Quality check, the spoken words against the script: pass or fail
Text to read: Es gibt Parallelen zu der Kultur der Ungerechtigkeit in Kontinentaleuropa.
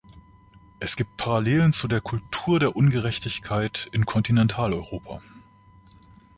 pass